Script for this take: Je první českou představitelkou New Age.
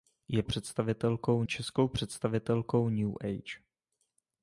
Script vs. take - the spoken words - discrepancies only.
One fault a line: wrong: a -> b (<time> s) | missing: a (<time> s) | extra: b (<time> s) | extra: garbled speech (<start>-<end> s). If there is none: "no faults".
wrong: první -> představitelkou (0.4 s)